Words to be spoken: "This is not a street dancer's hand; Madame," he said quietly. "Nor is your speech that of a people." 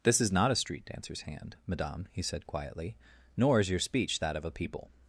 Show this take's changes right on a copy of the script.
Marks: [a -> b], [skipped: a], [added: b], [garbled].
"This is not a street dancer's hand; Madame," he said quietly. "Nor is your speech that of a people."